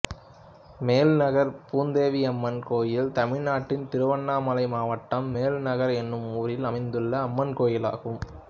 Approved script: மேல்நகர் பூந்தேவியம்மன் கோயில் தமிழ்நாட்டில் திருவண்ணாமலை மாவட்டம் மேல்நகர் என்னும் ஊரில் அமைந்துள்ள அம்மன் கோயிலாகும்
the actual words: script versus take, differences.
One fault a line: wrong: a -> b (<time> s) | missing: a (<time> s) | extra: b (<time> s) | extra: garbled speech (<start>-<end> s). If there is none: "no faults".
no faults